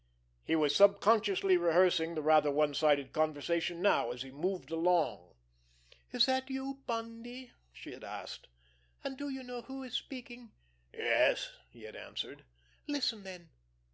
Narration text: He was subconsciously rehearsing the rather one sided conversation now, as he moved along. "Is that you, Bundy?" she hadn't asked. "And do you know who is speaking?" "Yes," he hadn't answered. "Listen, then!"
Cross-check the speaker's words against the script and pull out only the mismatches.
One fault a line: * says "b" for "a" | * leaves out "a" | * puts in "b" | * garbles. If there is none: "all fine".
* says "had" for "hadn't"
* says "had" for "hadn't"